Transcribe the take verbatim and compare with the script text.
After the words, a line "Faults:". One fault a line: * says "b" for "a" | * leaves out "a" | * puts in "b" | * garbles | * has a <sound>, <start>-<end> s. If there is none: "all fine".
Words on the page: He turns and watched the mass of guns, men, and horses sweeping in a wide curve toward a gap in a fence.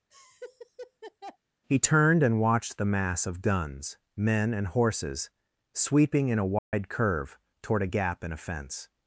He turned and watched the mass of guns, men, and horses sweeping in a wide curve toward a gap in a fence.
Faults:
* has a laugh, 0.1-1.4 s
* says "turned" for "turns"
* has a dropout, 6.6-6.7 s